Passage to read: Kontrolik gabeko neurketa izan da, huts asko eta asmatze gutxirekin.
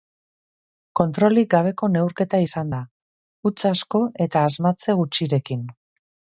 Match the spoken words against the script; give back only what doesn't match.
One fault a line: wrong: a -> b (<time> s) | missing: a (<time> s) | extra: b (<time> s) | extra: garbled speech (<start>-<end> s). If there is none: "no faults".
no faults